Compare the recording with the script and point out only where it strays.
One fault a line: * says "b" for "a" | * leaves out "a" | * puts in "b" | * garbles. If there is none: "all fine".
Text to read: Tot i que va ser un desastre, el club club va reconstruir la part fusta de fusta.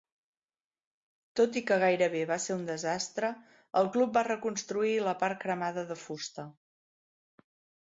* puts in "gairebé"
* leaves out "club"
* says "cremada" for "fusta"